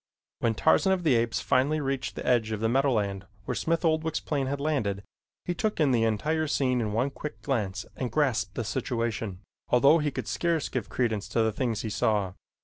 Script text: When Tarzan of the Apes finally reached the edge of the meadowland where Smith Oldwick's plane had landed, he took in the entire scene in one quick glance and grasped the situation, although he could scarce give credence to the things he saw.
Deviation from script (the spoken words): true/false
false